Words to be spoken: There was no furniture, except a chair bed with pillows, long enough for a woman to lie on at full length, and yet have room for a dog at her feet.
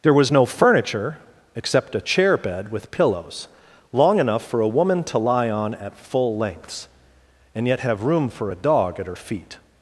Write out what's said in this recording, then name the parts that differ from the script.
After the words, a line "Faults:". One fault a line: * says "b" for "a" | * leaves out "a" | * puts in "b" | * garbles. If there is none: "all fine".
There was no furniture, except a chair bed with pillows, long enough for a woman to lie on at full lengths, and yet have room for a dog at her feet.
Faults:
* says "lengths" for "length"